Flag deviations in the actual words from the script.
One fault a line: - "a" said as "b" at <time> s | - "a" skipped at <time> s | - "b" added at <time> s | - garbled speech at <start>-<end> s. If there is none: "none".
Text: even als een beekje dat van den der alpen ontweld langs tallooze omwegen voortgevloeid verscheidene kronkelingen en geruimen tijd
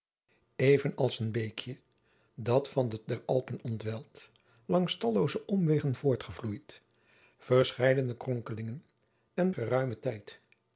none